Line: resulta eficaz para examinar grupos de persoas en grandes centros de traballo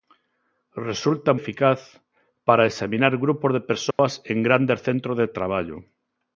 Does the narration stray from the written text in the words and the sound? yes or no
yes